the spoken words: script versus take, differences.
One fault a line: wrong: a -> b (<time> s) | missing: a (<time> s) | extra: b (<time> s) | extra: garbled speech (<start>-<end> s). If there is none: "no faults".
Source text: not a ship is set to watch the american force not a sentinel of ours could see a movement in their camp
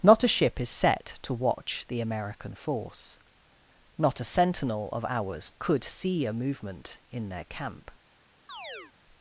no faults